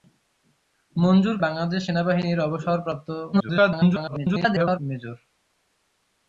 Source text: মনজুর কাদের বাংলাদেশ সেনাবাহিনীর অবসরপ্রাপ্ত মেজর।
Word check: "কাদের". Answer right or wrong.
wrong